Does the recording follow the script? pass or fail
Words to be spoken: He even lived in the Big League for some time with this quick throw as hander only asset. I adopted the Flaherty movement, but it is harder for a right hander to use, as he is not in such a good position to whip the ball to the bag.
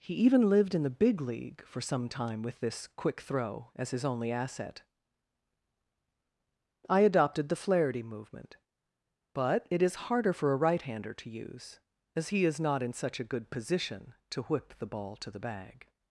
fail